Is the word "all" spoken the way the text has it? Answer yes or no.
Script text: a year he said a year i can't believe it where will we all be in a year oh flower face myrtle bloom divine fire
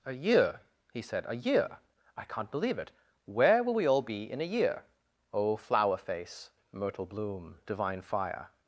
yes